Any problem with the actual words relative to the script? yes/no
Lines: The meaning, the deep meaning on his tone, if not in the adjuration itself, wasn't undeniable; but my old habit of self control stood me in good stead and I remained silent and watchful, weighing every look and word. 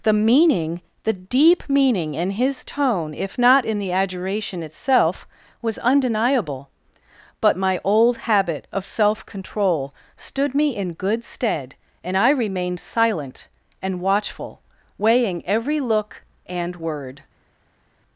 yes